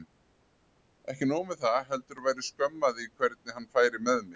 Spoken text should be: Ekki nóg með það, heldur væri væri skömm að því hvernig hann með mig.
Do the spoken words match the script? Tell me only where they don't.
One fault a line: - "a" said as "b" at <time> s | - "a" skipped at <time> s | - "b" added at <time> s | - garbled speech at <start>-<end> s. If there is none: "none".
- "væri" skipped at 2.5 s
- "færi" added at 3.8 s